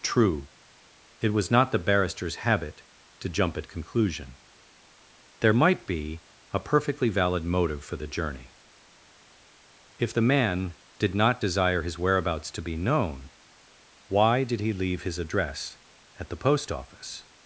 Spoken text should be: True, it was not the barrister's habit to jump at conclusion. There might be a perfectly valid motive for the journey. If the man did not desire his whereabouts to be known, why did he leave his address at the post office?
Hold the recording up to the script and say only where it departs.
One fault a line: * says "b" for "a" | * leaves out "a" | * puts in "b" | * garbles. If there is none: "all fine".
all fine